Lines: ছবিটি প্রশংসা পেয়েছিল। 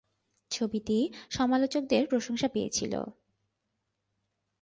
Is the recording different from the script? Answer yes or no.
yes